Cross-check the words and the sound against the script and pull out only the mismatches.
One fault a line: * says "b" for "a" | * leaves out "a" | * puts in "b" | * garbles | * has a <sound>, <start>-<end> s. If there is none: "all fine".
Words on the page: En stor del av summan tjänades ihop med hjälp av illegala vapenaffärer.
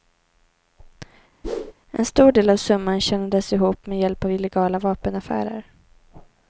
* has a whoosh, 1.4-1.7 s